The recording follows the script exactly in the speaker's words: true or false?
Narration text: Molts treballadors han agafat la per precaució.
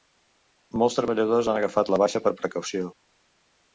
false